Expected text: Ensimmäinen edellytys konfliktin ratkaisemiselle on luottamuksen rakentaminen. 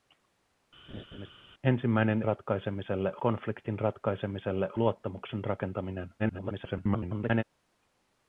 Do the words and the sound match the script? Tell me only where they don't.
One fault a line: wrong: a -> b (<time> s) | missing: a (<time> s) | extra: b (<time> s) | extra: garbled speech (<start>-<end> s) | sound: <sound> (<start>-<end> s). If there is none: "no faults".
sound: laugh (0.9-1.3 s)
wrong: edellytys -> ratkaisemiselle (2.2 s)
missing: on (4.7 s)
extra: garbled speech (6.2-7.4 s)